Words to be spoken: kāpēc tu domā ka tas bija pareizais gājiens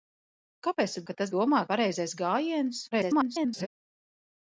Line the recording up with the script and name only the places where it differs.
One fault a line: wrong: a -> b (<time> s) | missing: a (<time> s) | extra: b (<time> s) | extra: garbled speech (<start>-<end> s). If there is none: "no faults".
missing: domā (1.0 s)
wrong: bija -> domā (1.3 s)
extra: garbled speech (2.9-3.7 s)